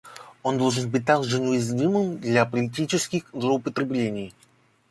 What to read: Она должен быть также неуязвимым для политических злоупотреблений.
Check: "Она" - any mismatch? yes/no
yes